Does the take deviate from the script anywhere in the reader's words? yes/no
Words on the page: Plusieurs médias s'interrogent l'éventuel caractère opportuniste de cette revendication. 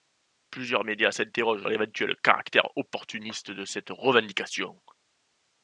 no